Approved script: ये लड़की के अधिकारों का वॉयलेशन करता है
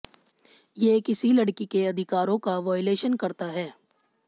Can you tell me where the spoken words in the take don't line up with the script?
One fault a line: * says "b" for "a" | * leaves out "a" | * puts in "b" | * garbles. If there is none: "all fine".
* puts in "किसी"